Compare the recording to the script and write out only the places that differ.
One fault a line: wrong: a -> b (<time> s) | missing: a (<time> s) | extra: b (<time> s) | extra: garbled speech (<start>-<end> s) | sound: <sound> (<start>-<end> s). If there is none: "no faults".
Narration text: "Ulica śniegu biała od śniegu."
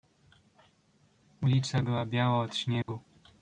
wrong: śniegu -> była (1.8 s)
sound: dropout (2.8-2.9 s)